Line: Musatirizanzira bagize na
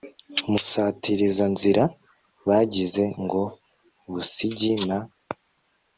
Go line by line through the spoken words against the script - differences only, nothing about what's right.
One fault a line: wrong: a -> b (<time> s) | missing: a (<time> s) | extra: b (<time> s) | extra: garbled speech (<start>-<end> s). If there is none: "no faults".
extra: ngo Busigi (3.2 s)